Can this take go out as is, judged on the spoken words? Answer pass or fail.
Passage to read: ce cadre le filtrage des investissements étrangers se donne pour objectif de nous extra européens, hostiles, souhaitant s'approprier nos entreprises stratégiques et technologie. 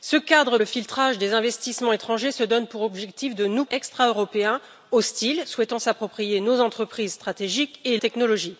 pass